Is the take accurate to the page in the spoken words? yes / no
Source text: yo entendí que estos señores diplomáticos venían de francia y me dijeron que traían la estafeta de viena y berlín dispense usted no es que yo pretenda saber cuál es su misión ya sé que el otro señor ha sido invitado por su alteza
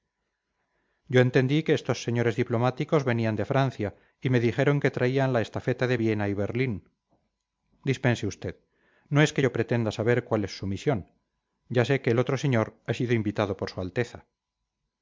yes